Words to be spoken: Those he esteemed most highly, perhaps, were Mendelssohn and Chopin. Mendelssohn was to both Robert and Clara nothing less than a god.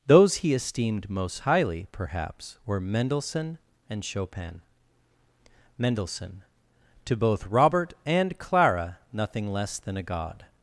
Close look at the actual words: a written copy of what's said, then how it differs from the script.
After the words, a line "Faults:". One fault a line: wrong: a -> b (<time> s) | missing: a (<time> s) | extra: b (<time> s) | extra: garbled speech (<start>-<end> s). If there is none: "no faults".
Those he esteemed most highly, perhaps, were Mendelssohn and Chopin. Mendelssohn to both Robert and Clara nothing less than a god.
Faults:
missing: was (6.4 s)